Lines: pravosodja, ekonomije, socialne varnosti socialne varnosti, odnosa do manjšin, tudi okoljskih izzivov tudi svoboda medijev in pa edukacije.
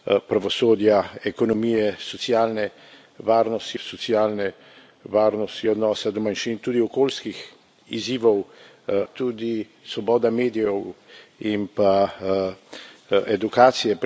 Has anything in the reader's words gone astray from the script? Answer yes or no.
no